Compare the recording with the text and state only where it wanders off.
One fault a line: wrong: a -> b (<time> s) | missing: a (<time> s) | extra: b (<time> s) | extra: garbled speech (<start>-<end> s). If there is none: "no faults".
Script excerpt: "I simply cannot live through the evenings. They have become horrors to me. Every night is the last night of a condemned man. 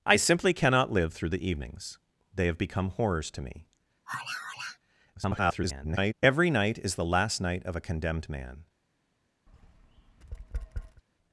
extra: garbled speech (5.1-6.1 s)